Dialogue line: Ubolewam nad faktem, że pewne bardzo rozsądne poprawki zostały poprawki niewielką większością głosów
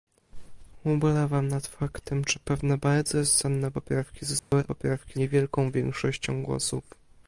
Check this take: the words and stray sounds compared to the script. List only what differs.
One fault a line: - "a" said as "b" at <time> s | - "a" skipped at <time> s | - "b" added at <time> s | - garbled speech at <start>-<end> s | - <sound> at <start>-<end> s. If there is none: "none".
- dropout at 4.4-4.5 s